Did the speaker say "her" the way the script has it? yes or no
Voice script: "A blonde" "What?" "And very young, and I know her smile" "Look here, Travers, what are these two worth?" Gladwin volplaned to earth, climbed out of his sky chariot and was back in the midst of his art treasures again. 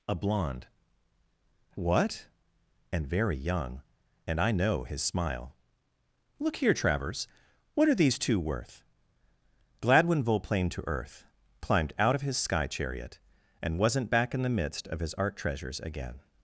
no